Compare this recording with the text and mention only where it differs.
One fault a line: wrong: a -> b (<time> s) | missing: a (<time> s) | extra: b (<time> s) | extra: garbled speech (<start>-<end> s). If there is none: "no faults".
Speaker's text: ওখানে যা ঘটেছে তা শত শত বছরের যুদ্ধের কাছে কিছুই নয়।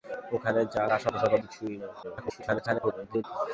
missing: ঘটেছে (0.8 s)
missing: বছরের যুদ্ধের কাছে (1.3 s)
extra: garbled speech (2.0-3.2 s)